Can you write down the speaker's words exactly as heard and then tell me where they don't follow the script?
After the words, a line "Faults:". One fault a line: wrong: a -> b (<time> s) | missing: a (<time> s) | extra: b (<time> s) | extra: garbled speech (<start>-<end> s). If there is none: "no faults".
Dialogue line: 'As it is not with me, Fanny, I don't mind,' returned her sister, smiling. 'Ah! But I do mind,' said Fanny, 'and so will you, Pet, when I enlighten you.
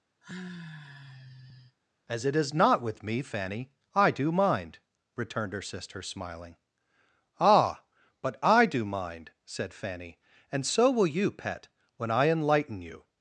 'As it is not with me, Fanny, I do mind,' returned her sister, smiling. 'Ah! But I do mind,' said Fanny, 'and so will you, Pet, when I enlighten you.
Faults:
wrong: don't -> do (4.1 s)